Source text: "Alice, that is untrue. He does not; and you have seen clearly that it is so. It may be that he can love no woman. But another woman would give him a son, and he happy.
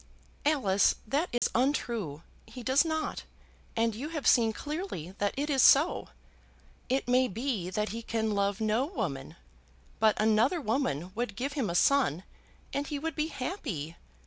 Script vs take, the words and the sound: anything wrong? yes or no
yes